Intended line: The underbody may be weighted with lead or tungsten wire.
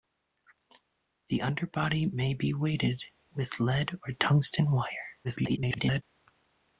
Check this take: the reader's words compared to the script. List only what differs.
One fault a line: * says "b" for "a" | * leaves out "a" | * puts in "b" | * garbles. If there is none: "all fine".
* garbles